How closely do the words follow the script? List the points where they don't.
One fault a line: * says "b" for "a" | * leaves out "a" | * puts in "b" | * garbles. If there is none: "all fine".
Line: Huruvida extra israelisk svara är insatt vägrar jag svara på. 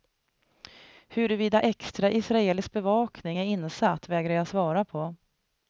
* says "bevakning" for "svara"